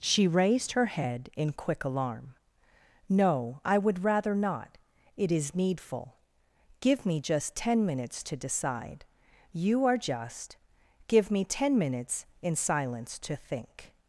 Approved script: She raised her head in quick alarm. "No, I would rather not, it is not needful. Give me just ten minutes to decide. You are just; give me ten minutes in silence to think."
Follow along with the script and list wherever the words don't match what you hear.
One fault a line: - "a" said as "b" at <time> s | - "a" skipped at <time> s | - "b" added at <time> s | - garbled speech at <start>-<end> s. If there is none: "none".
- "not" skipped at 5.5 s